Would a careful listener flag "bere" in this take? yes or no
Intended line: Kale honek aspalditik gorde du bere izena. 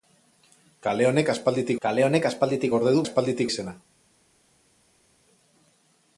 yes